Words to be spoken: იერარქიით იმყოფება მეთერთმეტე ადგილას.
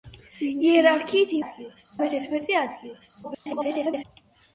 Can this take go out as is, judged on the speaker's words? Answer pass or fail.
fail